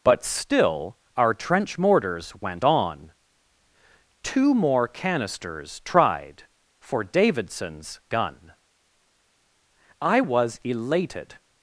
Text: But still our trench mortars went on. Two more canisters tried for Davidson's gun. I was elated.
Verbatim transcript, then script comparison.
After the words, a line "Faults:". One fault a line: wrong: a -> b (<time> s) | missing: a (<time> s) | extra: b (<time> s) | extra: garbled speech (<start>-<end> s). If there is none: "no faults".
But still our trench mortars went on. Two more canisters tried for Davidson's gun. I was elated.
Faults:
no faults